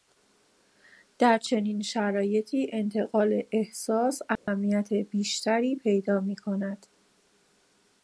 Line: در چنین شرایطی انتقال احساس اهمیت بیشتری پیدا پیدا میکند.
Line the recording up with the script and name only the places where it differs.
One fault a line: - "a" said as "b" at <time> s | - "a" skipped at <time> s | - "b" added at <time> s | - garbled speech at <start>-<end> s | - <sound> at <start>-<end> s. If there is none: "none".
- dropout at 4.4-4.5 s
- "پیدا" skipped at 6.2 s